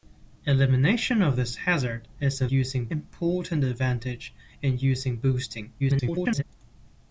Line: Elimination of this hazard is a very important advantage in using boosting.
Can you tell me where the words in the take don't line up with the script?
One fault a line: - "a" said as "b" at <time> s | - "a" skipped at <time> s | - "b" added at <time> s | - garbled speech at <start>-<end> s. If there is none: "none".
- "very" said as "using" at 2.5 s
- garbled speech at 5.8-6.4 s